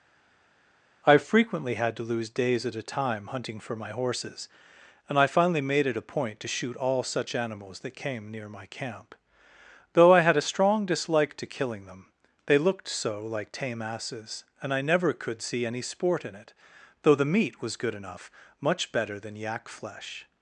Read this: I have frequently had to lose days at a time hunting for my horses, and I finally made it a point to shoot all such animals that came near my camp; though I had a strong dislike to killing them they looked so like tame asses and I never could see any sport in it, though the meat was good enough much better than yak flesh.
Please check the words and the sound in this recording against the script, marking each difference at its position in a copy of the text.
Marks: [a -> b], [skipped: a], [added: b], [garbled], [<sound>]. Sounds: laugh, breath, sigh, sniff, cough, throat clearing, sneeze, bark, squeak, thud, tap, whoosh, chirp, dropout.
I [skipped: have] frequently had to lose days at a time hunting for my horses, and I finally made it a point to shoot all such animals that came near my camp; though I had a strong dislike to killing them they looked so like tame asses and I never could see any sport in it, though the meat was good enough much better than yak flesh.